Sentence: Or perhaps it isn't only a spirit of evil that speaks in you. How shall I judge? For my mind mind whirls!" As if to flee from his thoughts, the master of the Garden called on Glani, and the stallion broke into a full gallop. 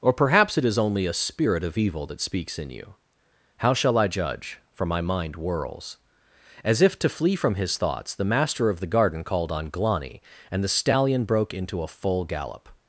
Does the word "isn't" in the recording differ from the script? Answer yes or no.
yes